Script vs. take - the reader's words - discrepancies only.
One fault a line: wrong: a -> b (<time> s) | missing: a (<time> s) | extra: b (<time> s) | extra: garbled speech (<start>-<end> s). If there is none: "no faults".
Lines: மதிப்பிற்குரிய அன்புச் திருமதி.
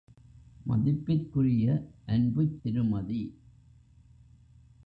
no faults